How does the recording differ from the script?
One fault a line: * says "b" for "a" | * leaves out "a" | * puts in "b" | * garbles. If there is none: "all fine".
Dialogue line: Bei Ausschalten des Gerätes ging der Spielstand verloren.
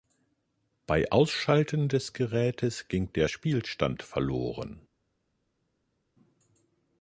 all fine